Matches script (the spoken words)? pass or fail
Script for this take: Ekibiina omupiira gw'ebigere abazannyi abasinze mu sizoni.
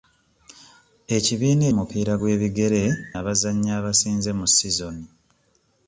pass